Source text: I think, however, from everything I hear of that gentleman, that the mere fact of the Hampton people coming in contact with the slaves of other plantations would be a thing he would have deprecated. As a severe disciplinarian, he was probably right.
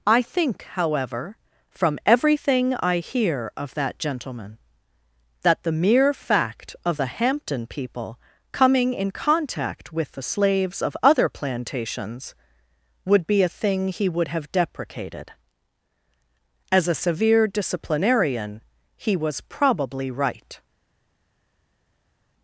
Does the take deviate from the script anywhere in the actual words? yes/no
no